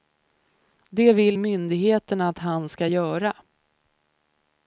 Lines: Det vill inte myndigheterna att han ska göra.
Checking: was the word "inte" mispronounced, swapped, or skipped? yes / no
yes